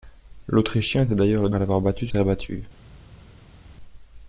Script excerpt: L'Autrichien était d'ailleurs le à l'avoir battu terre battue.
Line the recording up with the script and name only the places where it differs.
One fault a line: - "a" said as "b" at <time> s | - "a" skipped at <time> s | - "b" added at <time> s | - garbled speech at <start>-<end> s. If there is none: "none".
none